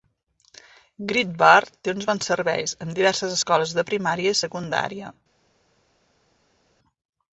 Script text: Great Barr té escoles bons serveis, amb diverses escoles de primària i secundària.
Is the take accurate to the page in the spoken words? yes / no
no